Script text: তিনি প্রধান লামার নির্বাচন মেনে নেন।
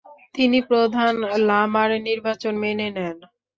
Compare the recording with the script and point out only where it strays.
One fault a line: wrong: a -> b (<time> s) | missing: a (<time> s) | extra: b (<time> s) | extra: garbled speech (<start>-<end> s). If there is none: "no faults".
no faults